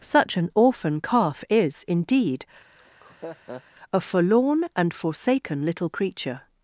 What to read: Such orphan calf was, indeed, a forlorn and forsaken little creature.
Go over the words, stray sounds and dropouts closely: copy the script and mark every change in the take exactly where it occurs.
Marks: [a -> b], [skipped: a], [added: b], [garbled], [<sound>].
Such [added: an] orphan calf [was, -> is] indeed, [laugh] a forlorn and forsaken little creature.